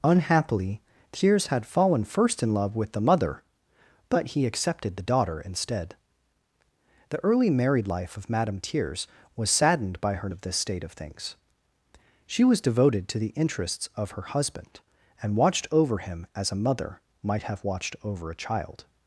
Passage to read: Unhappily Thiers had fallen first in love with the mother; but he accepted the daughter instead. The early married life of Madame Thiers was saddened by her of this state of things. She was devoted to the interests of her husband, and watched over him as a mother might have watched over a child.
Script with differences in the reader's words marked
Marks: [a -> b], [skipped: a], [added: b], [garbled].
Unhappily Thiers had fallen first in love with the mother; but he accepted the daughter instead. The early married life of Madame Thiers was saddened by her of this state of things. She was devoted to the interests of her husband, and watched over him as a mother might have watched over a child.